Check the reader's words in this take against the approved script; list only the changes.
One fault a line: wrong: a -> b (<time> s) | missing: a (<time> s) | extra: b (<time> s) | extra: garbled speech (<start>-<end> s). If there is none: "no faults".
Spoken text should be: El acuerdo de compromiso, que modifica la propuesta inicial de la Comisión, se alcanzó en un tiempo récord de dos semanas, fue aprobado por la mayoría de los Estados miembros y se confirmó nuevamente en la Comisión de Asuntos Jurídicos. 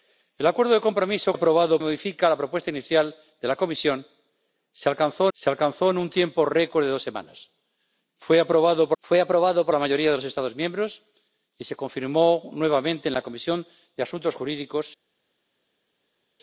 wrong: que -> aprobado (1.3 s)
extra: se alcanzó (5.3 s)
extra: fue aprobado por (9.0 s)